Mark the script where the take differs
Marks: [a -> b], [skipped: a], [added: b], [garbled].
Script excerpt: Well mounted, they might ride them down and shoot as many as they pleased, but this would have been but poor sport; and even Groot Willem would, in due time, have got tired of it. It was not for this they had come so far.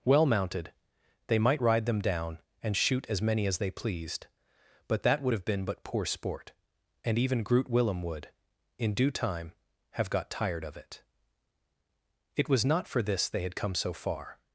Well mounted, they might ride them down and shoot as many as they pleased, but [this -> that] would have been but poor sport; and even Groot Willem would, in due time, have got tired of it. It was not for this they had come so far.